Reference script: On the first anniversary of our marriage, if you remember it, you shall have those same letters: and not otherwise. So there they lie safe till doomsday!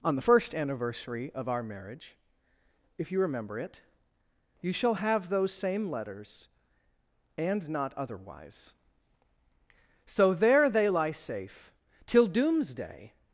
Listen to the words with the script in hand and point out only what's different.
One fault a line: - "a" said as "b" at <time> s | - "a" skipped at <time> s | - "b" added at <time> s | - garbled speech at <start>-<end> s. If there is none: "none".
none